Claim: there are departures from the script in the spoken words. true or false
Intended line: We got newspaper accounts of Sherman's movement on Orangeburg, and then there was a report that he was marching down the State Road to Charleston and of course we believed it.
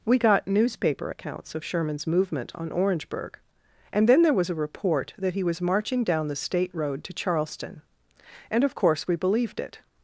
false